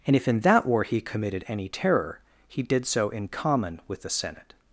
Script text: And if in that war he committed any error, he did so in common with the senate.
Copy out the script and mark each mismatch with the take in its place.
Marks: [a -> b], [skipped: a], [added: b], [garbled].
And if in that war he committed any [error, -> terror] he did so in common with the senate.